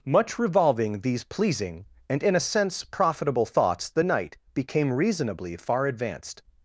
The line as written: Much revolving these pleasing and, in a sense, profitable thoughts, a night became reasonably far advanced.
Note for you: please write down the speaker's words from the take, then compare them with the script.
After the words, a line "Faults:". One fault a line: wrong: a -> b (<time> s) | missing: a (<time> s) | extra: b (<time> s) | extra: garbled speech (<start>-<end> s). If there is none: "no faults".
Much revolving these pleasing and, in a sense, profitable thoughts, the night became reasonably far advanced.
Faults:
wrong: a -> the (3.9 s)